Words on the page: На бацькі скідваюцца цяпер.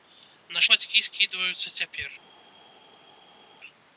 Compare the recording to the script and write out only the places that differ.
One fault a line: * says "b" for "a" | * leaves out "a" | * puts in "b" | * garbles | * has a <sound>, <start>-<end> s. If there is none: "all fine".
all fine